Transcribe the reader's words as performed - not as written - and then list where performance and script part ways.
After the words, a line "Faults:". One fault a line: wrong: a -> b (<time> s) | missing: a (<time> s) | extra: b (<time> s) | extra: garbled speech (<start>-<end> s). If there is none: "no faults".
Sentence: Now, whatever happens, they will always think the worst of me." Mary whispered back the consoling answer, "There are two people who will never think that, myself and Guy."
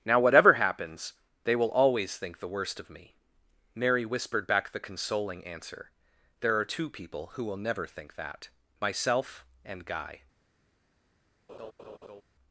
Now, whatever happens, they will always think the worst of me." Mary whispered back the consoling answer, "There are two people who will never think that, myself and Guy."
Faults:
no faults